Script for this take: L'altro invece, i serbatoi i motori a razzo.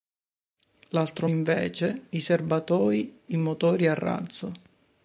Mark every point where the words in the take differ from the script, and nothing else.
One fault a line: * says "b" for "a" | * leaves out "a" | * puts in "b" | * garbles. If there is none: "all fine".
all fine